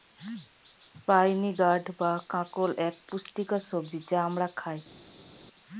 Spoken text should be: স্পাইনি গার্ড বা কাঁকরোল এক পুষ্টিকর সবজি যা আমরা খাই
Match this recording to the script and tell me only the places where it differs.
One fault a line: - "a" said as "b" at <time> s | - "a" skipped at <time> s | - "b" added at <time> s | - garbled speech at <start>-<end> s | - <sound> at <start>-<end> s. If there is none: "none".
none